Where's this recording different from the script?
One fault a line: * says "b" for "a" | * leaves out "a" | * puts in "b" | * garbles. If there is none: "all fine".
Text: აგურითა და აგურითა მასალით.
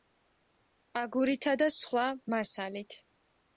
* says "სხვა" for "აგურითა"